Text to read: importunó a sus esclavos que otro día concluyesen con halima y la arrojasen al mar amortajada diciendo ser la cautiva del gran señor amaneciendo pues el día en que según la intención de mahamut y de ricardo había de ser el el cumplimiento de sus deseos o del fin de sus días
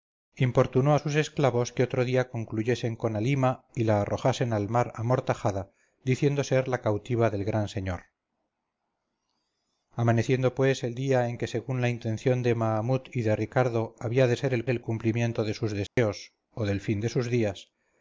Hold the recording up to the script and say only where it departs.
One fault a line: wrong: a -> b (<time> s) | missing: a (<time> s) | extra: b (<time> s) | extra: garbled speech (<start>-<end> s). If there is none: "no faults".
no faults